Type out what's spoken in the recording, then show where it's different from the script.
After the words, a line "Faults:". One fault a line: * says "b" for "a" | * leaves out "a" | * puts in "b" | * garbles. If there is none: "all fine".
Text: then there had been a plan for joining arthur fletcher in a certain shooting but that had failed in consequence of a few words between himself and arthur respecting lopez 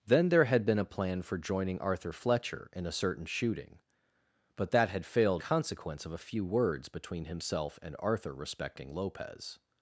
then there had been a plan for joining arthur fletcher in a certain shooting but that had failed consequence of a few words between himself and arthur respecting lopez
Faults:
* leaves out "in"